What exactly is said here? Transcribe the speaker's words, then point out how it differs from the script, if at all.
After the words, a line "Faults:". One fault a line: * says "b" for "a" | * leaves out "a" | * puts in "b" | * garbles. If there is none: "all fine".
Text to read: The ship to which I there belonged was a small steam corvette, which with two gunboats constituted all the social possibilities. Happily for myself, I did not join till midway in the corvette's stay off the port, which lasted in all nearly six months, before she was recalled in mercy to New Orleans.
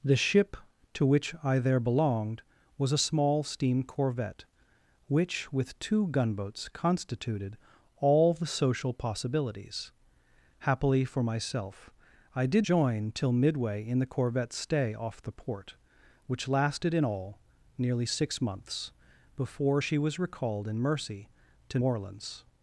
The ship to which I there belonged was a small steam corvette, which with two gunboats constituted all the social possibilities. Happily for myself, I did join till midway in the corvette's stay off the port, which lasted in all nearly six months, before she was recalled in mercy to Orleans.
Faults:
* leaves out "not"
* leaves out "New"